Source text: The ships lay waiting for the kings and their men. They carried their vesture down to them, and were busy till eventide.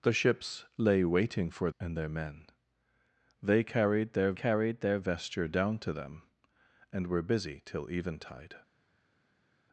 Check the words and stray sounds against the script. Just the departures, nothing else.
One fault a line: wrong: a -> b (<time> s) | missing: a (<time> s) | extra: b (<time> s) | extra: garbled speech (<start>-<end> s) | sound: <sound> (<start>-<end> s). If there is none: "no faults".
missing: the kings (1.7 s)
extra: carried their (4.3 s)